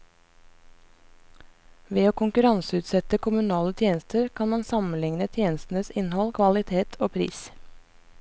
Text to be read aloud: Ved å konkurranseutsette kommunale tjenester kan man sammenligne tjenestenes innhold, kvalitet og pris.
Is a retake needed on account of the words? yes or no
no